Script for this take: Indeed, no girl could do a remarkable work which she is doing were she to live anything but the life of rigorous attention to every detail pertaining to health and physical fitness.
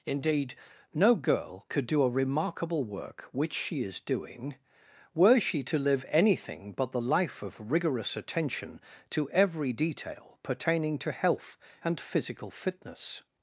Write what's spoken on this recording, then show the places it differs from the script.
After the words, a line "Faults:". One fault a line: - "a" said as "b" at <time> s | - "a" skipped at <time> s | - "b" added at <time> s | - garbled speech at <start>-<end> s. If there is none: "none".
Indeed, no girl could do a remarkable work which she is doing were she to live anything but the life of rigorous attention to every detail pertaining to health and physical fitness.
Faults:
none